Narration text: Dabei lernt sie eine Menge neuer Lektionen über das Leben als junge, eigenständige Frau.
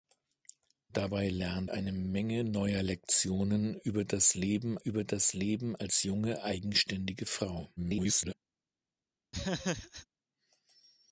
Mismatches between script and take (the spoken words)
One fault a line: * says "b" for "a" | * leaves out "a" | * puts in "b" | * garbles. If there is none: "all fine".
* leaves out "sie"
* puts in "über das Leben"
* garbles